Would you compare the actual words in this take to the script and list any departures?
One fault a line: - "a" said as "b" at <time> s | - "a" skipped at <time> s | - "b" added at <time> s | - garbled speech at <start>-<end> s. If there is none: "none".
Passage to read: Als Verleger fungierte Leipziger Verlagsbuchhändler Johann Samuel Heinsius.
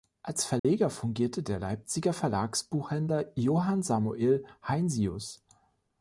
- "der" added at 1.4 s